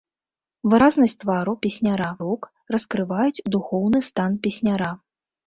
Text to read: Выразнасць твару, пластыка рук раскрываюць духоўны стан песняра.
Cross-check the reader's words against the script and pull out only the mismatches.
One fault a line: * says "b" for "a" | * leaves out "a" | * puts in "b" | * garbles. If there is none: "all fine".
* says "песняра" for "пластыка"